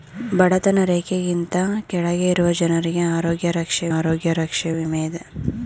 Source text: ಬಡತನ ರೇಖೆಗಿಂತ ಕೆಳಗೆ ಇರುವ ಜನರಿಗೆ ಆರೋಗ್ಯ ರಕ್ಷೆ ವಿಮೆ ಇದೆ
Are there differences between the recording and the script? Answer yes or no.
yes